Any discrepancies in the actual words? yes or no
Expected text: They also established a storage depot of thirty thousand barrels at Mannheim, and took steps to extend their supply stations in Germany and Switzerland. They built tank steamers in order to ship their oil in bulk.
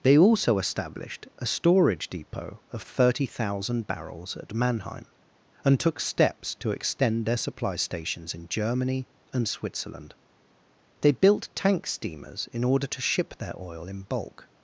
no